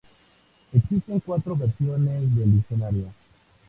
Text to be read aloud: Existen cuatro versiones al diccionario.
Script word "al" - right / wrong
wrong